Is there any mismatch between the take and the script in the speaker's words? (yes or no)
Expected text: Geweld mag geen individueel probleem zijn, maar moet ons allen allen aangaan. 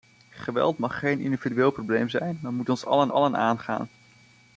no